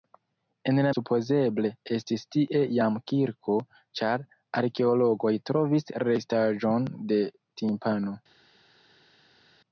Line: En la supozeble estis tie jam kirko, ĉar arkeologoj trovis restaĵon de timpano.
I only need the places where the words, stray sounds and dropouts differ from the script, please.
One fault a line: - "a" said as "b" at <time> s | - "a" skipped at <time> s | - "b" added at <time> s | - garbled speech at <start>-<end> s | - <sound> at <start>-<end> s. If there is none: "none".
none